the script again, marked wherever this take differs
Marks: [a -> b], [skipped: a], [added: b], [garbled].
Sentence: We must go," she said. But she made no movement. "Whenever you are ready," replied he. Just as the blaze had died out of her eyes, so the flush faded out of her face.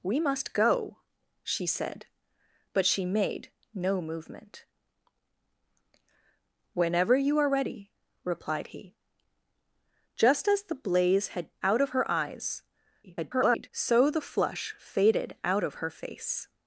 We must go," she said. But she made no movement. "Whenever you are ready," replied he. Just as the blaze had [skipped: died] out of her eyes, [garbled] so the flush faded out of her face.